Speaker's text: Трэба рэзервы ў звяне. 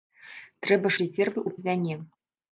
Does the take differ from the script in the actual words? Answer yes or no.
no